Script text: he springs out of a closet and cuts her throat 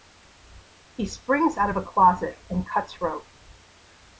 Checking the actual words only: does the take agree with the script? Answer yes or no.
no